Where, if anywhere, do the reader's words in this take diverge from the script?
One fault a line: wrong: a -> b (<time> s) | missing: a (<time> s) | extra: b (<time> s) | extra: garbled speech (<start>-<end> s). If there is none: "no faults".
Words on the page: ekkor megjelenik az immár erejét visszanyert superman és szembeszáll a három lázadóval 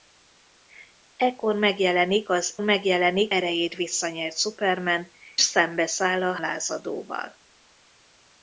wrong: immár -> megjelenik (2.6 s)
missing: és (5.1 s)
missing: három (6.4 s)